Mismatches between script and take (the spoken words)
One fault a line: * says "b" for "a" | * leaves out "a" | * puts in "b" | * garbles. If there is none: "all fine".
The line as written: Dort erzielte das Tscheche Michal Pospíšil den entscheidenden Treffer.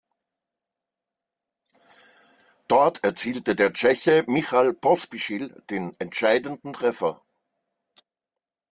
* says "der" for "das"